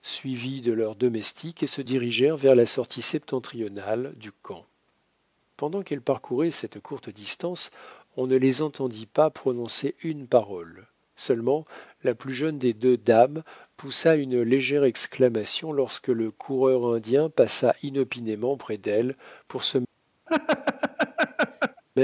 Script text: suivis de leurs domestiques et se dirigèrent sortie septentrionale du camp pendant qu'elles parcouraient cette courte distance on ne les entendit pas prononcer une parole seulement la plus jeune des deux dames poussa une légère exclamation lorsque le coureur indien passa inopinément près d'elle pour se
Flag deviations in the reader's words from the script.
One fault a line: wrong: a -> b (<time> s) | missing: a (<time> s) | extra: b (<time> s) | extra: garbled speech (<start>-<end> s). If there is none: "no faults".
extra: vers la (2.4 s)